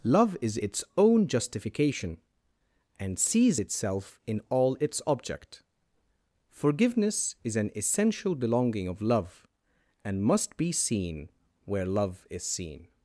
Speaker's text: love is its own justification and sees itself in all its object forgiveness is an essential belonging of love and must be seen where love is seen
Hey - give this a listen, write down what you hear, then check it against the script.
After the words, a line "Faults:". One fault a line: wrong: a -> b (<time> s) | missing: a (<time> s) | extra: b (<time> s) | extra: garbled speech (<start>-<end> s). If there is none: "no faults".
love is its own justification and sees itself in all its object forgiveness is an essential belonging of love and must be seen where love is seen
Faults:
no faults